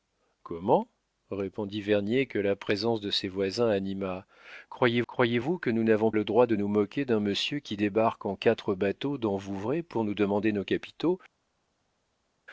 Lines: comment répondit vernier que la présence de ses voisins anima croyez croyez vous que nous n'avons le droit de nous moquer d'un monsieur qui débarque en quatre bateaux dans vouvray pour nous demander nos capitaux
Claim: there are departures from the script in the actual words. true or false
false